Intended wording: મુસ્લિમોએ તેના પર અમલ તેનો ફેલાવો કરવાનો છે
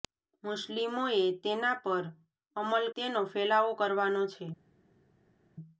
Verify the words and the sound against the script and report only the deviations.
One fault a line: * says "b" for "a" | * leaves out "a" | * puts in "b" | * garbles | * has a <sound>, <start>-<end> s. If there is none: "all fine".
all fine